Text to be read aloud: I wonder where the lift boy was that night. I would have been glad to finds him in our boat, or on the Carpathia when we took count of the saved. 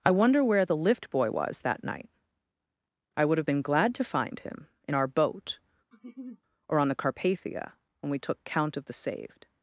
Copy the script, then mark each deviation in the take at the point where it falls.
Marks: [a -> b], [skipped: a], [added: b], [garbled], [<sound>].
I wonder where the lift boy was that night. I would have been glad to [finds -> find] him in our boat, [laugh] or on the Carpathia when we took count of the saved.